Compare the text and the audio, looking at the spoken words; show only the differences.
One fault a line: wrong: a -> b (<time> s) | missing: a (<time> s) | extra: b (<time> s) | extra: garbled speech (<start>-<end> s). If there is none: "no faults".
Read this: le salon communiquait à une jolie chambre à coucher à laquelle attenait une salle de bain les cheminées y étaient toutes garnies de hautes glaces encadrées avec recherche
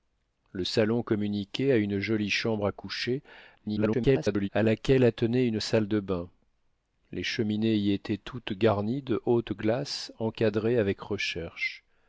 extra: garbled speech (3.6-4.5 s)